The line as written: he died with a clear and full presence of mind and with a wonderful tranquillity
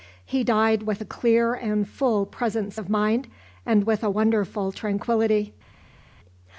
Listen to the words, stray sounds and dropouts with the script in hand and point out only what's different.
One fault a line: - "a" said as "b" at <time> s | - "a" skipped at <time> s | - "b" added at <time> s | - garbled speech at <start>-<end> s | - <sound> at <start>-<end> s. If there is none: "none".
none